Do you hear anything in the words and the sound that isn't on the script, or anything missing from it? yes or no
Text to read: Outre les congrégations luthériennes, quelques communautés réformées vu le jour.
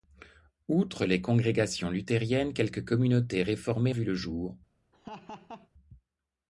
yes